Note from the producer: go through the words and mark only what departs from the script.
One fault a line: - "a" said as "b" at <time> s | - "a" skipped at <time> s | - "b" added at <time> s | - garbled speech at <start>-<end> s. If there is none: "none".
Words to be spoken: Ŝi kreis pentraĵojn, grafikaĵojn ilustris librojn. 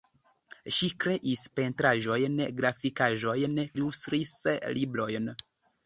none